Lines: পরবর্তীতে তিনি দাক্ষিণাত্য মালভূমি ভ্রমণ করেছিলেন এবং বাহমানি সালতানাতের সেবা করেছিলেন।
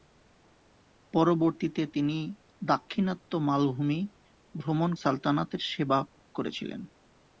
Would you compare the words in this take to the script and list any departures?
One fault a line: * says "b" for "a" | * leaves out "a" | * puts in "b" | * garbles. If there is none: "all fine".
* leaves out "করেছিলেন এবং বাহমানি"